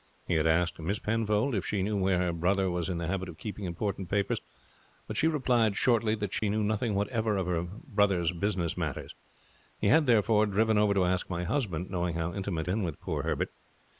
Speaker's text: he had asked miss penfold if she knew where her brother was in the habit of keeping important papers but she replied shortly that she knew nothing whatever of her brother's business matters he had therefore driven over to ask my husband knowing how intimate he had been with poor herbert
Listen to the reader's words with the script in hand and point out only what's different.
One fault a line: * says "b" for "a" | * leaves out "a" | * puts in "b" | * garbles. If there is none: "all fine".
* leaves out "he had"